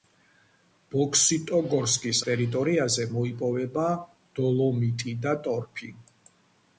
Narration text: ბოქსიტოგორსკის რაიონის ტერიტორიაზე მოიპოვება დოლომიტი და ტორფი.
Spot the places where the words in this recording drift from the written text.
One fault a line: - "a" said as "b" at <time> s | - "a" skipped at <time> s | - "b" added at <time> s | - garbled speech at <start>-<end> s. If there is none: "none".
- "რაიონის" skipped at 2.2 s